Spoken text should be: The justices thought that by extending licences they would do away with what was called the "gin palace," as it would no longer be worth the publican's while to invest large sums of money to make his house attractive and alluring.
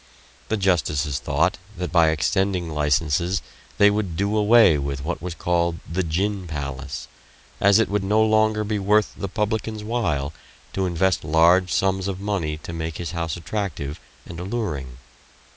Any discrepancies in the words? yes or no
no